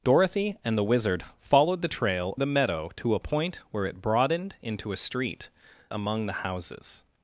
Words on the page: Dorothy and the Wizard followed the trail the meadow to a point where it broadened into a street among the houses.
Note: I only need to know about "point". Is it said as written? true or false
true